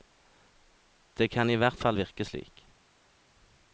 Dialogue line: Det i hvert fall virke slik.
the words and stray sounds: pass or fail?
fail